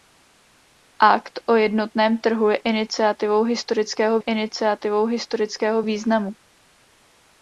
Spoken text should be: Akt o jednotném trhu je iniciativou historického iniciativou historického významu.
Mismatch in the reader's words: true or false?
false